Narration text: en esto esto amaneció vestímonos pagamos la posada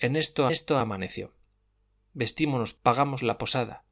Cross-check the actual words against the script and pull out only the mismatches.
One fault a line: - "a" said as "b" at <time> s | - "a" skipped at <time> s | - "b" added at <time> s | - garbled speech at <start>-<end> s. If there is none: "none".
none